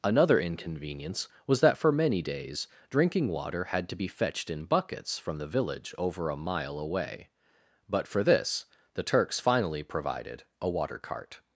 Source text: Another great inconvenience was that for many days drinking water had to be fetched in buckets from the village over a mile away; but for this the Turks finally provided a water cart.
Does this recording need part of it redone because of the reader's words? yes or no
yes